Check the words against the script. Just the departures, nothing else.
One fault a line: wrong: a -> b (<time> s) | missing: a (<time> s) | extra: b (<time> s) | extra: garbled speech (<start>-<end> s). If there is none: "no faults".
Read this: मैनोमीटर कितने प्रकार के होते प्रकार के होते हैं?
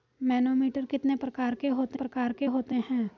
no faults